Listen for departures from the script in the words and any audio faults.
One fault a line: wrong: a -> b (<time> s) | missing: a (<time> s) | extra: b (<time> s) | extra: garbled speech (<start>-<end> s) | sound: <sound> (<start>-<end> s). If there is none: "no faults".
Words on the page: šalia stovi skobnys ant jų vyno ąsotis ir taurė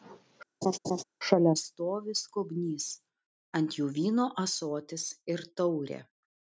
sound: laugh (0.6-1.0 s)